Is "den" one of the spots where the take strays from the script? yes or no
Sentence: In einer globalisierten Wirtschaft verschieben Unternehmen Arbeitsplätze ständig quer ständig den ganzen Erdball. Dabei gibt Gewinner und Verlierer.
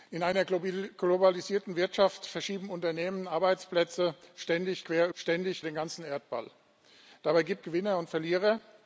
no